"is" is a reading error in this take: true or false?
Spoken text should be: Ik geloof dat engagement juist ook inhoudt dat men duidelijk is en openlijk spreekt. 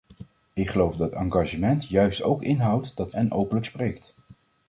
true